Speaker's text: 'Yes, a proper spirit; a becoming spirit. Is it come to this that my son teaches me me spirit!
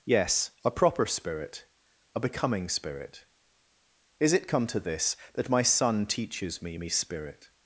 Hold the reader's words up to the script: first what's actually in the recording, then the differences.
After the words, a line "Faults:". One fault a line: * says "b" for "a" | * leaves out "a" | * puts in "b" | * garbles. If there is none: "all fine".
'Yes, a proper spirit; a becoming spirit. Is it come to this that my son teaches me me spirit!
Faults:
all fine